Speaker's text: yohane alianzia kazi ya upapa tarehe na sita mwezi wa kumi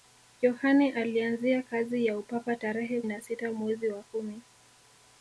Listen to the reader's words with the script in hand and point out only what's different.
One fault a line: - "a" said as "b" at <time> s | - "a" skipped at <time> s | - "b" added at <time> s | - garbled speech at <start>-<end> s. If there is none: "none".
none